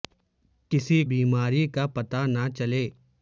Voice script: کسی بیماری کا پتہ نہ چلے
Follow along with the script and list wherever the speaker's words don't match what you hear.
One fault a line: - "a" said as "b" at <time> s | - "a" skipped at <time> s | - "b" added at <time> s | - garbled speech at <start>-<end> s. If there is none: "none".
none